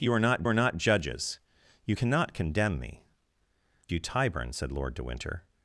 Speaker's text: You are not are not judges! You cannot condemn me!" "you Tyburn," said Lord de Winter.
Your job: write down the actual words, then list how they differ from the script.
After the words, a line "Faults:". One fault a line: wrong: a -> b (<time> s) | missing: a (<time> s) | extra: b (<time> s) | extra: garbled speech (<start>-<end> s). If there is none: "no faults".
You are not are not judges! You cannot condemn me!" "you Tyburn," said Lord de Winter.
Faults:
no faults